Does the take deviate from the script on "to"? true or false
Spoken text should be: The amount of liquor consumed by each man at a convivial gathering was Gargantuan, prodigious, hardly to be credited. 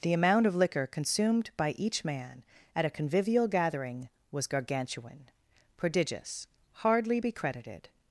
true